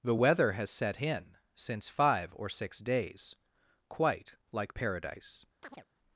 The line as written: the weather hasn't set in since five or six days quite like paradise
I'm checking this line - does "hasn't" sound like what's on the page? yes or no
no